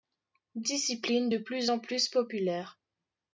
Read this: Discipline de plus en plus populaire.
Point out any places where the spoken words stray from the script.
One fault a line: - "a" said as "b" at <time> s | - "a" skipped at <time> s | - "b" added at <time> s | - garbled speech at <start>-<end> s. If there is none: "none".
none